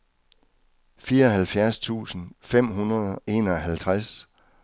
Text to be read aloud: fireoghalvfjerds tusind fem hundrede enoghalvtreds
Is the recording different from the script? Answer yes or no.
no